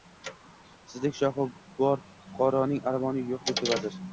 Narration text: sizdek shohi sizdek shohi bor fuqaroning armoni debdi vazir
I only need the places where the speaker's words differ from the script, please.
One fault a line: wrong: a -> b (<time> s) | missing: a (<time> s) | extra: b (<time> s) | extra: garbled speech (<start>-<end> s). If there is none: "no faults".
missing: sizdek shohi (1.4 s)
extra: yo‘q (3.3 s)